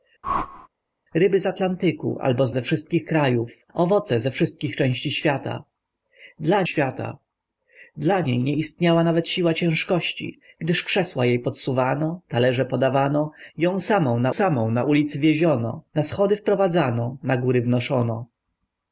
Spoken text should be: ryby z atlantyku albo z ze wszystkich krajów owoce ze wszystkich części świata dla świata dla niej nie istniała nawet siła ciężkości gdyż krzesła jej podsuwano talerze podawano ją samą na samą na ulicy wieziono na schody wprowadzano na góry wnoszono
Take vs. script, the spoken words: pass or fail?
pass